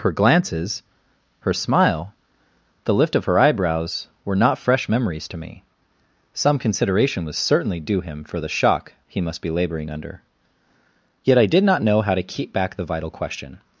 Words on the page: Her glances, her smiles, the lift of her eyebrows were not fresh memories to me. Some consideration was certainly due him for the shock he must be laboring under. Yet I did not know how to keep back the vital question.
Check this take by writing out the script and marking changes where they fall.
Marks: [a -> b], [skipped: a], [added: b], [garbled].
Her glances, her [smiles, -> smile] the lift of her eyebrows were not fresh memories to me. Some consideration was certainly due him for the shock he must be laboring under. Yet I did not know how to keep back the vital question.